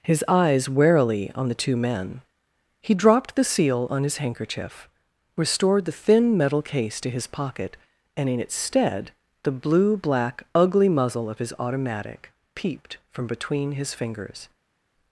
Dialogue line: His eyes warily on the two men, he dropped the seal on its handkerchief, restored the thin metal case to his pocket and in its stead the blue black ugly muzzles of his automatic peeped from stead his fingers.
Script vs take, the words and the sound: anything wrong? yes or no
yes